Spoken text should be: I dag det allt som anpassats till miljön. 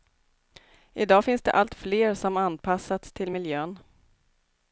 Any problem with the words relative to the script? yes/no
yes